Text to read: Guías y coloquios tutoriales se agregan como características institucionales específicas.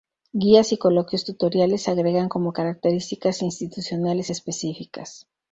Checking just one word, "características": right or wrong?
right